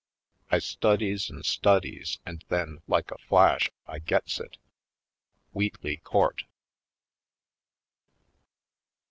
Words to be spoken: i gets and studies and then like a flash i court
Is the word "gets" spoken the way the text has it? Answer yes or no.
no